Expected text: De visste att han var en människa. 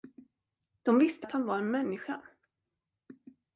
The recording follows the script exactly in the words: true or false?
true